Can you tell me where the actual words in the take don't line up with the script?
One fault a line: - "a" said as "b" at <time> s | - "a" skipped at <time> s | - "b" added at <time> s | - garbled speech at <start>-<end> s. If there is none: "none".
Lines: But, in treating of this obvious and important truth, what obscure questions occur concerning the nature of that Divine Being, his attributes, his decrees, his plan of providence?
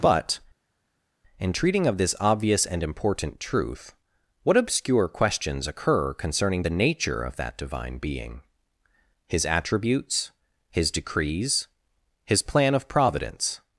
none